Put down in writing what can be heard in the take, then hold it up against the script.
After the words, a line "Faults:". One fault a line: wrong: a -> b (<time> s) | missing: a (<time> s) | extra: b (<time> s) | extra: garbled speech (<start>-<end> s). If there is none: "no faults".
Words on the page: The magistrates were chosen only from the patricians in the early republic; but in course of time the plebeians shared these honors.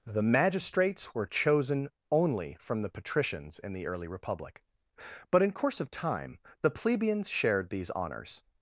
The magistrates were chosen only from the patricians in the early republic; but in course of time the plebeians shared these honors.
Faults:
no faults